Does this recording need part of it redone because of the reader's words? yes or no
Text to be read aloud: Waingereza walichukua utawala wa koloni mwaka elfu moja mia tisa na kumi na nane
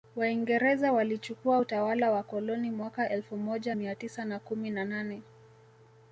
no